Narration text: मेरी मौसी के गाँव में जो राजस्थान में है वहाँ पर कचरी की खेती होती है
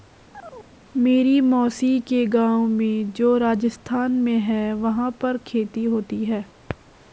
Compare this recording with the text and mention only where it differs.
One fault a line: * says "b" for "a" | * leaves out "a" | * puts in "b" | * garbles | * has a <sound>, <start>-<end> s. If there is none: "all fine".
* has a chirp, 0.3-0.7 s
* leaves out "कचरी की"